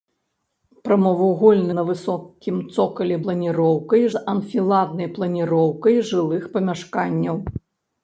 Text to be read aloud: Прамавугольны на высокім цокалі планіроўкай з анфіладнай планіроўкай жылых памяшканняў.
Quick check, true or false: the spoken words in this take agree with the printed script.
true